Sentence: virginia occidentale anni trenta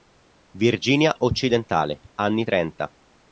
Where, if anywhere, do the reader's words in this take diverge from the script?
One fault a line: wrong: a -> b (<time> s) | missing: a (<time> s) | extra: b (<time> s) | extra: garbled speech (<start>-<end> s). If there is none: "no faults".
no faults